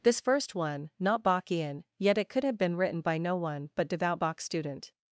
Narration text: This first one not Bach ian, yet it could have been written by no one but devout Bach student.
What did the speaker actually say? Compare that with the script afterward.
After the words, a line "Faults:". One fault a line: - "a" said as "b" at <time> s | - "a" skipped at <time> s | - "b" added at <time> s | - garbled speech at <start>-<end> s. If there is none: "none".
This first one not Bach ian, yet it could have been written by no one but devout Bach student.
Faults:
none